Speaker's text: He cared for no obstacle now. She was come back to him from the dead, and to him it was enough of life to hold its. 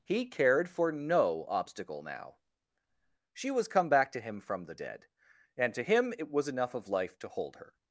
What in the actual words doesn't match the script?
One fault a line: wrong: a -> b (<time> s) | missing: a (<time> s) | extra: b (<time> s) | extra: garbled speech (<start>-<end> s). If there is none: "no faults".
wrong: its -> her (7.6 s)